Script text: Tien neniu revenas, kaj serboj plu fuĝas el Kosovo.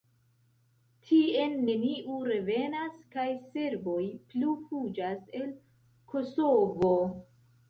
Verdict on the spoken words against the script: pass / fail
pass